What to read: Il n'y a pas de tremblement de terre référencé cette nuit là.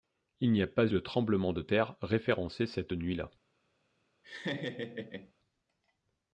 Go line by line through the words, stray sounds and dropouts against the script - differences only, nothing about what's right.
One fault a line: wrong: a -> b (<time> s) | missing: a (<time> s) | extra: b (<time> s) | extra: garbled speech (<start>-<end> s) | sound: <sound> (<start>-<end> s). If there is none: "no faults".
sound: laugh (4.2-5.3 s)